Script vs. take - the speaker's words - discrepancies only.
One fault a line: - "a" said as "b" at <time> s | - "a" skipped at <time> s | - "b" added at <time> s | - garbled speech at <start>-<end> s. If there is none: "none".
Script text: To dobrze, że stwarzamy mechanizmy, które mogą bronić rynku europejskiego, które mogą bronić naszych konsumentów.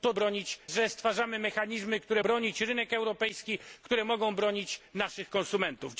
- "dobrze" said as "bronić" at 0.1 s
- "mogą" skipped at 2.2 s